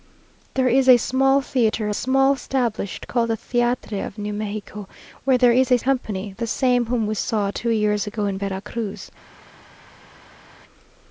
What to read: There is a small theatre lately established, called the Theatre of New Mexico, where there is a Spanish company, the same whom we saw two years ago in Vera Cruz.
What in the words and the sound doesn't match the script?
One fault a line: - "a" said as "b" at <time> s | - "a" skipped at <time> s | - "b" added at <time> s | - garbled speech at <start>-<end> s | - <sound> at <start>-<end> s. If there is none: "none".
- "lately" said as "small" at 1.9 s
- "Spanish" skipped at 5.8 s